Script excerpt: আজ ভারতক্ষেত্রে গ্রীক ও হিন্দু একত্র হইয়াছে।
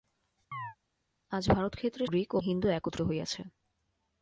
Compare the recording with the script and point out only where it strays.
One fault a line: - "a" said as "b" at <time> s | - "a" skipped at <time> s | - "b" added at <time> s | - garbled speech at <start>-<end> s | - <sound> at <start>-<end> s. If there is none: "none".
- chirp at 0.5-0.8 s